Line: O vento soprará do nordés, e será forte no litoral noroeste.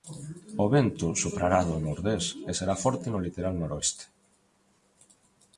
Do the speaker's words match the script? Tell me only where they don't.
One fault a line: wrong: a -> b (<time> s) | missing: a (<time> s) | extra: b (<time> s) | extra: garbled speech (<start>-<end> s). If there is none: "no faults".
no faults